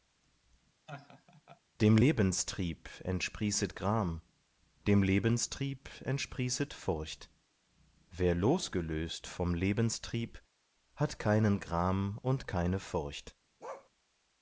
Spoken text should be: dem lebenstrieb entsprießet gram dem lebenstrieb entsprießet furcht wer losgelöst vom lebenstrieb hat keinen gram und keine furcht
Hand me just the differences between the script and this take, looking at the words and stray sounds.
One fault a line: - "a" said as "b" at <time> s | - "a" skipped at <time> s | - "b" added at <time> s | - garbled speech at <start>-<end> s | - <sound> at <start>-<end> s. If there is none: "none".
- laugh at 0.9-1.6 s
- bark at 13.6-13.9 s